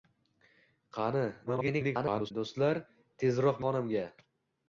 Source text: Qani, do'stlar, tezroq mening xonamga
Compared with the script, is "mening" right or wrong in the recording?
wrong